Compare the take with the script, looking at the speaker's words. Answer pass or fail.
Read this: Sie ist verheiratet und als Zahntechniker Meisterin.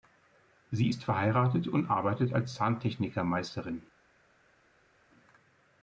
fail